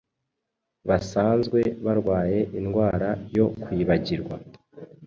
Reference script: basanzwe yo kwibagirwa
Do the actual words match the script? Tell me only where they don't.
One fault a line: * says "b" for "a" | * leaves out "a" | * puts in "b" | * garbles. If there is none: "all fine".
* puts in "barwaye indwara"